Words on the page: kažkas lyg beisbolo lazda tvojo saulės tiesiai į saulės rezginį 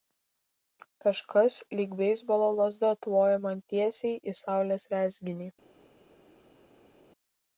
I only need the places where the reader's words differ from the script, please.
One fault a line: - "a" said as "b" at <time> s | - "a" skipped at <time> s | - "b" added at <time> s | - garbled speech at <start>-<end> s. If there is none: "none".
- "saulės" said as "man" at 3.4 s